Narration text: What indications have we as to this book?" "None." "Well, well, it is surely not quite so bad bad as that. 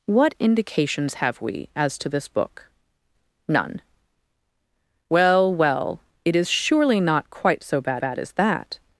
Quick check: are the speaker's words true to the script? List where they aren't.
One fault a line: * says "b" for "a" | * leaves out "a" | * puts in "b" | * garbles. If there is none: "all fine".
all fine